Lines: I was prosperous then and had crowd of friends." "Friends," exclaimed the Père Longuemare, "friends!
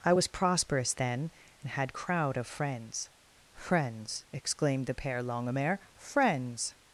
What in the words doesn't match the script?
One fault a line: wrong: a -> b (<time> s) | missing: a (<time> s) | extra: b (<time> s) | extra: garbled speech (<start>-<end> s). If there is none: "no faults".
no faults